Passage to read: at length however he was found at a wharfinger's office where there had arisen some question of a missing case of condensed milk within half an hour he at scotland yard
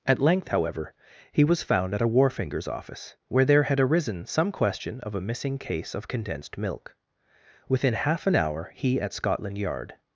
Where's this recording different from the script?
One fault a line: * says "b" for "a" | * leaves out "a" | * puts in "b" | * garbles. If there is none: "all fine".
all fine